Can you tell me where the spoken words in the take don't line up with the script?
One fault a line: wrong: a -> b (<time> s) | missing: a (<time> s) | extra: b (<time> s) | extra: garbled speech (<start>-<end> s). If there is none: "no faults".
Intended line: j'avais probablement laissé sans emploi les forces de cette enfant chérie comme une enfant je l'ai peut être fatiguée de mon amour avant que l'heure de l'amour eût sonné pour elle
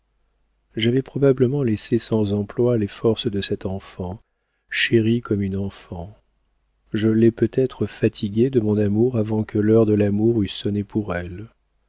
no faults